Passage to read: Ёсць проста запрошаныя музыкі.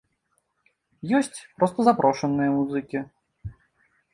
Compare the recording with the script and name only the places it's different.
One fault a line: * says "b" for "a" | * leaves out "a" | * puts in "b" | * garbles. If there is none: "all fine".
all fine